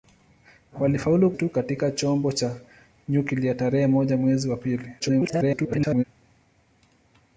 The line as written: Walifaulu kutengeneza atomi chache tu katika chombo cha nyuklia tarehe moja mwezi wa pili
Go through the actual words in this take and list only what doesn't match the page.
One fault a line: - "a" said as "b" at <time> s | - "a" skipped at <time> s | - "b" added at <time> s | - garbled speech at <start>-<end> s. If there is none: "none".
- "kutengeneza atomi chache" skipped at 1.3 s
- garbled speech at 5.0-6.0 s